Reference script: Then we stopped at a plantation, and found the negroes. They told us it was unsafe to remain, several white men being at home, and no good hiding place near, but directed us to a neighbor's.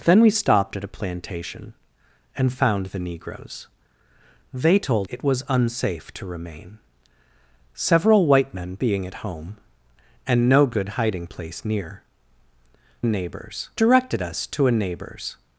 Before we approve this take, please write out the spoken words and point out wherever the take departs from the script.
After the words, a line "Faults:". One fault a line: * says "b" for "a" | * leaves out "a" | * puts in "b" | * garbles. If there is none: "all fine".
Then we stopped at a plantation, and found the negroes. They told it was unsafe to remain, several white men being at home, and no good hiding place near, neighbor's directed us to a neighbor's.
Faults:
* leaves out "us"
* says "neighbor's" for "but"